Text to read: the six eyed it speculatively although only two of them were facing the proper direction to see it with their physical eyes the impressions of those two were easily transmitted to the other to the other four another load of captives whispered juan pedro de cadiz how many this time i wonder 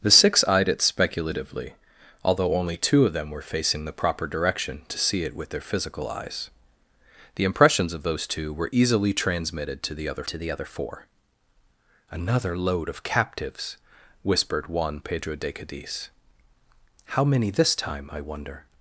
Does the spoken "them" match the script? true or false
true